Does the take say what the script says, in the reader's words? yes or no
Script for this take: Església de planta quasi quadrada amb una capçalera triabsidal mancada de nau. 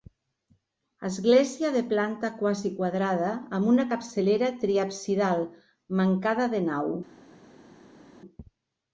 yes